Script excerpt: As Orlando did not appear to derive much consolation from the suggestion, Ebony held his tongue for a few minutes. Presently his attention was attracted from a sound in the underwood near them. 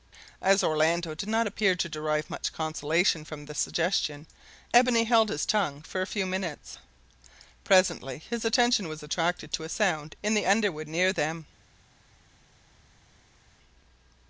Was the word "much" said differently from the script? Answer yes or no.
no